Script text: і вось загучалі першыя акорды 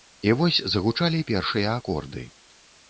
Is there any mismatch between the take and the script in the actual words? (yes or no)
no